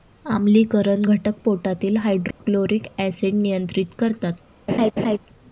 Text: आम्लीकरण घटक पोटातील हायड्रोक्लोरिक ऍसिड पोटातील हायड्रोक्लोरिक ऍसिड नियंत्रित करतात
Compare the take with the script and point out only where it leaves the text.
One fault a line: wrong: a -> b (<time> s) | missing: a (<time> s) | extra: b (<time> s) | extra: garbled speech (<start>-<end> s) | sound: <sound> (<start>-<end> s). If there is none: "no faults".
sound: dropout (2.3-2.4 s)
missing: पोटातील हायड्रोक्लोरिक ऍसिड (3.3 s)
sound: laugh (4.7-5.2 s)